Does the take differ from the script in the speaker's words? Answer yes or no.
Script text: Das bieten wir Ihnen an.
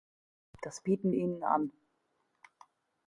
yes